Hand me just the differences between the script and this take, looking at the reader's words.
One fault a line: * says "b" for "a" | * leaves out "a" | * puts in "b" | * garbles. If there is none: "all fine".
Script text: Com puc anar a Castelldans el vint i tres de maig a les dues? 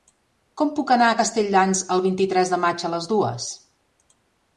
all fine